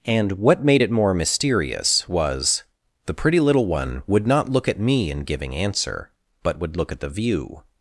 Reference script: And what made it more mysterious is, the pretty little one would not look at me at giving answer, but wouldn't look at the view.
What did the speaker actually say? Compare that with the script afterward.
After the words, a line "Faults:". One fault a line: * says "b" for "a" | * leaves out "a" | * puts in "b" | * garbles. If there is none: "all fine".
And what made it more mysterious was, the pretty little one would not look at me in giving answer, but would look at the view.
Faults:
* says "was" for "is"
* says "in" for "at"
* says "would" for "wouldn't"